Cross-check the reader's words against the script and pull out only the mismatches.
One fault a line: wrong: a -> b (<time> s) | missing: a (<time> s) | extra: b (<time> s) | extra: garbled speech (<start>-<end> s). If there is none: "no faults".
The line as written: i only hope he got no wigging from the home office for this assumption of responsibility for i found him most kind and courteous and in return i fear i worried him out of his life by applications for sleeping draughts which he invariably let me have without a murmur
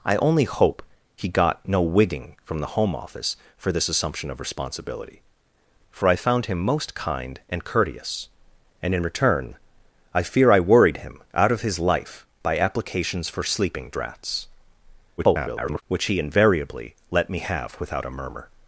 extra: garbled speech (15.2-15.8 s)